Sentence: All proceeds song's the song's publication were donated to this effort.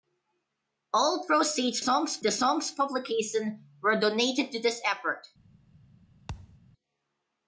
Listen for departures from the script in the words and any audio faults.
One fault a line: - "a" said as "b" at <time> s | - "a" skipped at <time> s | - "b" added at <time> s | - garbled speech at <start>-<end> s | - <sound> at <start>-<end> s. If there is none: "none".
- thud at 6.3-6.6 s